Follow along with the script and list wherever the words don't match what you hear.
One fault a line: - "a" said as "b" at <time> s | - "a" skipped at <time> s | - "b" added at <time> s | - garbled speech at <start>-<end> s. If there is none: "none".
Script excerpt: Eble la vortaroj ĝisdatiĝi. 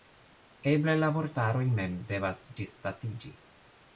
- "mem devas" added at 1.8 s